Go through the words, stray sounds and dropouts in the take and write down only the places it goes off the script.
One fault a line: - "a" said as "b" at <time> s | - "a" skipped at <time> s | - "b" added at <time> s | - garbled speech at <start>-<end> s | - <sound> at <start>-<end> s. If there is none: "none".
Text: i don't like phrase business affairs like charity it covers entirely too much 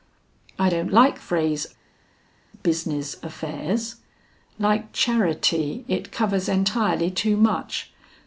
none